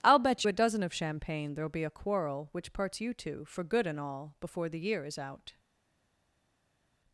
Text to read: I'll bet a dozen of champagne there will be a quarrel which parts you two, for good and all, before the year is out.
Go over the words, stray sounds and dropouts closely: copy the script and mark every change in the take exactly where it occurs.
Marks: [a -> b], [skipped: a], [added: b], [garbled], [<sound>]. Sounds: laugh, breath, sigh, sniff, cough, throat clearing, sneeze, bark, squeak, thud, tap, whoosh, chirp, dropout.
I'll bet a dozen of champagne there will be a quarrel which parts you two, for good and all, before the year is out.